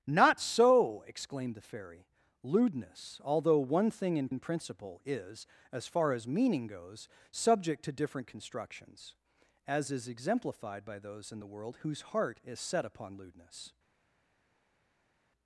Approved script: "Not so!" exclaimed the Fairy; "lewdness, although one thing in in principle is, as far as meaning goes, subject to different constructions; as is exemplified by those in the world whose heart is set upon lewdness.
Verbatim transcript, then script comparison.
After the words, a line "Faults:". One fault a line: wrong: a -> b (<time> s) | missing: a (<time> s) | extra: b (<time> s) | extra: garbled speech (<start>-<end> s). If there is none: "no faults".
"Not so!" exclaimed the Fairy; "lewdness, although one thing in in principle is, as far as meaning goes, subject to different constructions; as is exemplified by those in the world whose heart is set upon lewdness.
Faults:
no faults